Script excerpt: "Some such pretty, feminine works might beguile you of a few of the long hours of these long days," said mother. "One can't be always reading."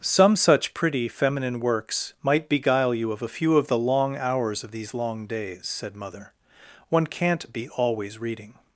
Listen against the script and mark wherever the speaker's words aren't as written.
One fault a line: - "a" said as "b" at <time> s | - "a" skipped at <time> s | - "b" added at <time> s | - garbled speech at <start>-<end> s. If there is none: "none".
none